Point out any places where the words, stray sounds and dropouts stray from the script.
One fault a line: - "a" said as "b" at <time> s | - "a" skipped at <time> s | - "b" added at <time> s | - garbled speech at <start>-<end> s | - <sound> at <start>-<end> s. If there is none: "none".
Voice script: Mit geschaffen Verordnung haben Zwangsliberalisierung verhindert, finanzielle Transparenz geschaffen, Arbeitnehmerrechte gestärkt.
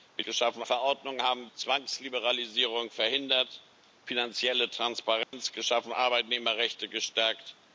- dropout at 5.2-5.3 s